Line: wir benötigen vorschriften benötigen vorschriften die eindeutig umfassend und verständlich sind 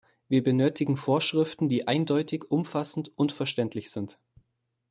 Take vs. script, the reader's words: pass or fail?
fail